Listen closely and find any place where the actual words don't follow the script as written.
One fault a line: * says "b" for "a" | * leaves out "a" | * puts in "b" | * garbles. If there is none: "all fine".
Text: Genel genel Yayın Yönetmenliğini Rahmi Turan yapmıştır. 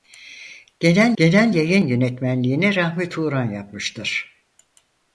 all fine